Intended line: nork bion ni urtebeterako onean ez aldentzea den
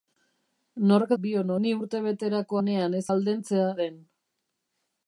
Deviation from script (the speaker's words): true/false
false